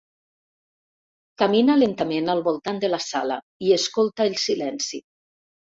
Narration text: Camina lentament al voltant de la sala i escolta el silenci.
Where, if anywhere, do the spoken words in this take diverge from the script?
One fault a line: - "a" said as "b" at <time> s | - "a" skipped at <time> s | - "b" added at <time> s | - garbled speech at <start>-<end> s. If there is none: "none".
none